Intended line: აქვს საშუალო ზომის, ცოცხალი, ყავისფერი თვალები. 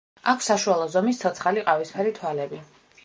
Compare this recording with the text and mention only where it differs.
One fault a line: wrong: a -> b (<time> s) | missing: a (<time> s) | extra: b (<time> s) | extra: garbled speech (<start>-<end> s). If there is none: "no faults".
no faults